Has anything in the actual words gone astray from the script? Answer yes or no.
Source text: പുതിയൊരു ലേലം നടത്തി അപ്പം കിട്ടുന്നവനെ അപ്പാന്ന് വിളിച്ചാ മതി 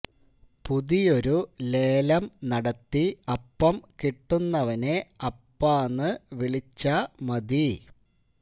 no